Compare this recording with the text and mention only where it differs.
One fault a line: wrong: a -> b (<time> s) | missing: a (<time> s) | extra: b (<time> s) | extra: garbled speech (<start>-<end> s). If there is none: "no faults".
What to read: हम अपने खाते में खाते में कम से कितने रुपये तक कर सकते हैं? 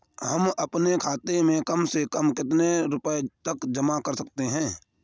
wrong: खाते में -> कम से (1.6 s)
missing: से (2.3 s)
extra: जमा (3.7 s)